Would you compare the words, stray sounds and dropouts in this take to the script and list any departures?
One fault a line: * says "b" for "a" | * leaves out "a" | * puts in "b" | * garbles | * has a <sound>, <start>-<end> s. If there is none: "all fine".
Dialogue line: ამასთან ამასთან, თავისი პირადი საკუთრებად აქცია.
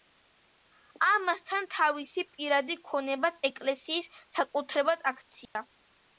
* leaves out "ამასთან"
* puts in "ქონებაც ეკლესიის"
* has a dropout, 5.5-5.6 s